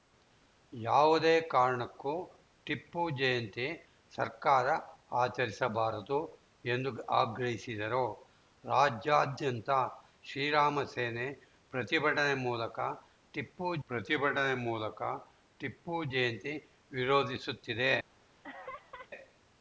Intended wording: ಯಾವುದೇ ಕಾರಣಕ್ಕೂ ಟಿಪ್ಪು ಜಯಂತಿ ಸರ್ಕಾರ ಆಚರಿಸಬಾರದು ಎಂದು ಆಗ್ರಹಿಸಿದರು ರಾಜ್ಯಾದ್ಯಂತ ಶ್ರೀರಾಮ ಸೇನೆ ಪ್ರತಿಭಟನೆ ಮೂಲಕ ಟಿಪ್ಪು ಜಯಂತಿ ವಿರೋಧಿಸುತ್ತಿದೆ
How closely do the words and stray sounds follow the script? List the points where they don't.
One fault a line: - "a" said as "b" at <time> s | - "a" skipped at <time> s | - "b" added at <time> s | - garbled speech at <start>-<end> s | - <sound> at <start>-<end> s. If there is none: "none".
- "ಪ್ರತಿಭಟನೆ ಮೂಲಕ ಟಿಪ್ಪು" added at 13.9 s
- laugh at 18.4-19.1 s